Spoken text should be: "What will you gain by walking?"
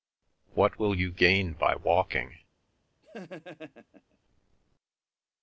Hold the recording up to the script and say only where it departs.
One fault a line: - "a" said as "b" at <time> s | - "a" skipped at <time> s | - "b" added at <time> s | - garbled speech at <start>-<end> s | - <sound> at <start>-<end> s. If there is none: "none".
- laugh at 3.0-4.2 s